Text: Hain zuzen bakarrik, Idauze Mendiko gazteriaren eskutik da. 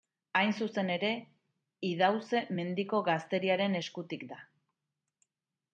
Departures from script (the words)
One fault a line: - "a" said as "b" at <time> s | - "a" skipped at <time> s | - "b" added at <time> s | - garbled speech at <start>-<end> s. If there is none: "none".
- "bakarrik" said as "ere" at 0.9 s